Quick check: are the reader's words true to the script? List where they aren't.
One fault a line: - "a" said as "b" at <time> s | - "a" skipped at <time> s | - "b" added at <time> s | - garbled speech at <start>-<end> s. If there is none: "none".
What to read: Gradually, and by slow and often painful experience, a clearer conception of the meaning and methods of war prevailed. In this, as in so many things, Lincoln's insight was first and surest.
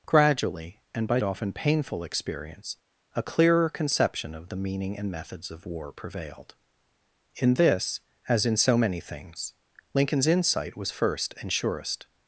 - "slow and" skipped at 1.2 s